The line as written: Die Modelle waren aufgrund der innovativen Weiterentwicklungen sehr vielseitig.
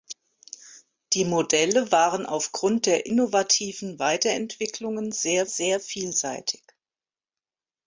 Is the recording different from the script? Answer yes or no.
yes